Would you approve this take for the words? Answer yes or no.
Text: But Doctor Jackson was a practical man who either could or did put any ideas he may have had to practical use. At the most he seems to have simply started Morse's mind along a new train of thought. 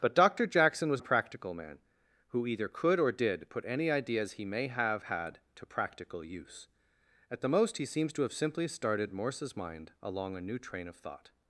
yes